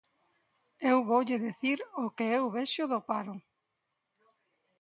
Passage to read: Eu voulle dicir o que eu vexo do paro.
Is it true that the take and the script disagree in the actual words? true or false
false